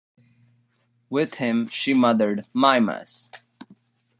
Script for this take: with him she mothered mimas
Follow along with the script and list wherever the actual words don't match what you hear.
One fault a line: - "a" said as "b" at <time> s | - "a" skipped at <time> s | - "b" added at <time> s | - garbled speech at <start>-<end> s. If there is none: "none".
none